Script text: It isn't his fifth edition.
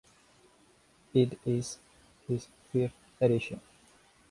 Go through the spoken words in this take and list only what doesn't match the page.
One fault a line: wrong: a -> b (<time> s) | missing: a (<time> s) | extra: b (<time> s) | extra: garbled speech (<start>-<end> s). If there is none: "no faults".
wrong: isn't -> is (1.4 s)